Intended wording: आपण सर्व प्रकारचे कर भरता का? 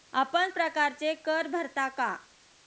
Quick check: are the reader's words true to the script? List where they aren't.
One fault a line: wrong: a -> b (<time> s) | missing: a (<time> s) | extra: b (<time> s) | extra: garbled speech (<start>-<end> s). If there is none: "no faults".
missing: सर्व (0.5 s)